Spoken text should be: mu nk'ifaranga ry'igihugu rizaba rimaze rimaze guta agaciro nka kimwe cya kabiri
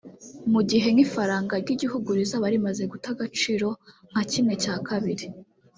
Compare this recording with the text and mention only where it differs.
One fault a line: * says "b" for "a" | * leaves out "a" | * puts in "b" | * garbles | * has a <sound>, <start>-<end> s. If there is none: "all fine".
* puts in "gihe"
* leaves out "rimaze"